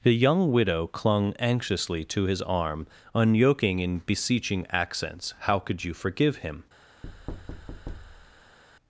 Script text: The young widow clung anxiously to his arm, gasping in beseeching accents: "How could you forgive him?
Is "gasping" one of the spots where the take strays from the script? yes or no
yes